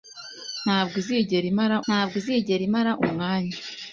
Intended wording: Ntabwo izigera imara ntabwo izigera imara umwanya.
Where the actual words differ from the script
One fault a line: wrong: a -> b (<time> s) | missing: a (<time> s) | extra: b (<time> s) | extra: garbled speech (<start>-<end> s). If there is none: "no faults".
no faults